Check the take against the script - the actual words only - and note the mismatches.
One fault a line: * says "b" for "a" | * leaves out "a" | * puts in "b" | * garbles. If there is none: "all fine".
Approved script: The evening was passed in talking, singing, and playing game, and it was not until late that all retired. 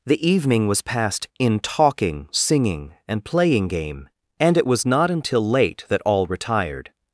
all fine